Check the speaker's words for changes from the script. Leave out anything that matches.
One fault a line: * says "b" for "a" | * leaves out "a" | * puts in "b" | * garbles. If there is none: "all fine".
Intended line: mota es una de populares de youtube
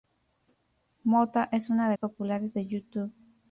all fine